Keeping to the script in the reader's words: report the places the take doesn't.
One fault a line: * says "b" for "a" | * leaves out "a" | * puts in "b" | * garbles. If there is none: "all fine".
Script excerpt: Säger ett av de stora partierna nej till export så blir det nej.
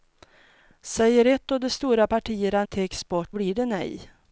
* leaves out "nej"
* leaves out "så"